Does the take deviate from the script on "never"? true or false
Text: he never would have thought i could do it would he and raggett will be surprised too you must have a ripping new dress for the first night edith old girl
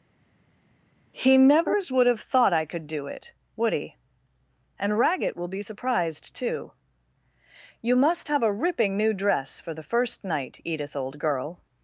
true